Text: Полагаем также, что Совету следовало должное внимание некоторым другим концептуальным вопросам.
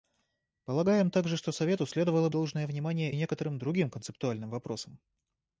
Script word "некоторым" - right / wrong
right